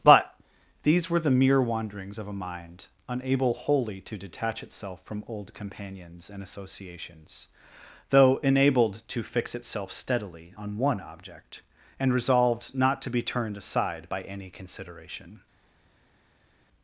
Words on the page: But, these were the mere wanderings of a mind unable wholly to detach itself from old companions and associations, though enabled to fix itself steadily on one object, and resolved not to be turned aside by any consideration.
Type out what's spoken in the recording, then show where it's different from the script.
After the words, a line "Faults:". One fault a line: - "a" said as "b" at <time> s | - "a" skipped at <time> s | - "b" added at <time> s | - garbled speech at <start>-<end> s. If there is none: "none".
But, these were the mere wanderings of a mind unable wholly to detach itself from old companions and associations, though enabled to fix itself steadily on one object, and resolved not to be turned aside by any consideration.
Faults:
none